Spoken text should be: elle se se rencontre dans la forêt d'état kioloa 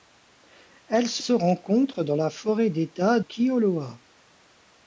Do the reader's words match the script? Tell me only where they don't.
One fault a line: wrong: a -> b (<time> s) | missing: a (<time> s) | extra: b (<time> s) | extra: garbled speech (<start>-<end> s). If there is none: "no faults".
no faults